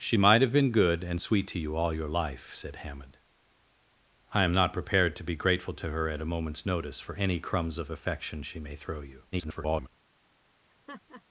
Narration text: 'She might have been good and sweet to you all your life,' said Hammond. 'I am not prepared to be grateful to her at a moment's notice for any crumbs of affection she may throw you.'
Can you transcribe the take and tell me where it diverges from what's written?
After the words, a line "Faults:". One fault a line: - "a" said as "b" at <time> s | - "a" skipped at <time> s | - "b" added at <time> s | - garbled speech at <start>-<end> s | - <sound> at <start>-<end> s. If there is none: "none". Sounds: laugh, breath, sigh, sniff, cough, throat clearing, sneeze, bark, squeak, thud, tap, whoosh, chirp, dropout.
'She might have been good and sweet to you all your life,' said Hammond. 'I am not prepared to be grateful to her at a moment's notice for any crumbs of affection she may throw you.' [garbled]
Faults:
- garbled speech at 9.3-9.9 s
- laugh at 10.7-11.2 s